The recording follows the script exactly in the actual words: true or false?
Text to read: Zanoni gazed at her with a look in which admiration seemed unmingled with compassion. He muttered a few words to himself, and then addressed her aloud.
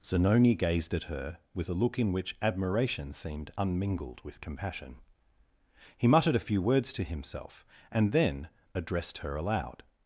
true